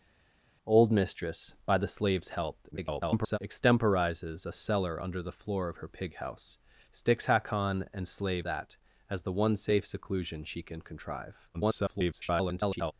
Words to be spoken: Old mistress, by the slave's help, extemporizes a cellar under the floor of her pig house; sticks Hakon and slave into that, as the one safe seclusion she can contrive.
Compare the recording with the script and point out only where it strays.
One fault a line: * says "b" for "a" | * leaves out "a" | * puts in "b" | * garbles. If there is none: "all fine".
* garbles
* leaves out "into"
* garbles